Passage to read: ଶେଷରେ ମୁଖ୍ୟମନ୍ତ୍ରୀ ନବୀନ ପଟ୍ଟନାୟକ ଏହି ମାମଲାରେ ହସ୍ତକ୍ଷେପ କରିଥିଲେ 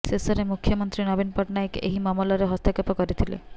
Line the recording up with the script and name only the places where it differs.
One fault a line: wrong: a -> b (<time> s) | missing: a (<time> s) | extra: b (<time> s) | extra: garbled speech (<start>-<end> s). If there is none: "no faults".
no faults